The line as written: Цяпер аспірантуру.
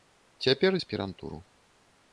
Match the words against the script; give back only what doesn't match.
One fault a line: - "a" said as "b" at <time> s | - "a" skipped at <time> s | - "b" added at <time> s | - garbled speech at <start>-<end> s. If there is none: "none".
none